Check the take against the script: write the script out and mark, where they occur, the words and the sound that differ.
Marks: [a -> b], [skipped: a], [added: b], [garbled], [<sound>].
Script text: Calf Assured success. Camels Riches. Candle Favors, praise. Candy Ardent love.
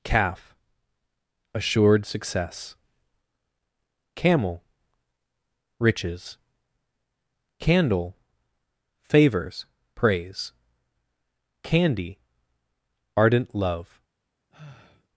Calf Assured success. [Camels -> Camel] Riches. Candle Favors, praise. Candy Ardent love. [sigh]